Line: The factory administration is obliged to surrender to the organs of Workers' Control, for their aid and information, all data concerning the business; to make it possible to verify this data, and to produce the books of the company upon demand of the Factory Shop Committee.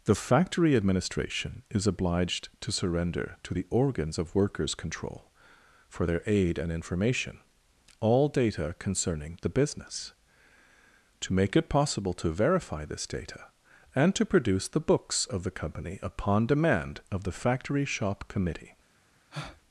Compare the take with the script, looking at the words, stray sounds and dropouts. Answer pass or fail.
fail